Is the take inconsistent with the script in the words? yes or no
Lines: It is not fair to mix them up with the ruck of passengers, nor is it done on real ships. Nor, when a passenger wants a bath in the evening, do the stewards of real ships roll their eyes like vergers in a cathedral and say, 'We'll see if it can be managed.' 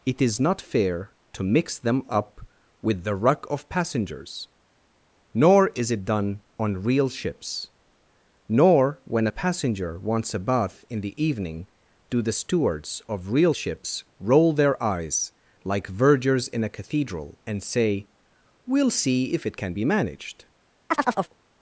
no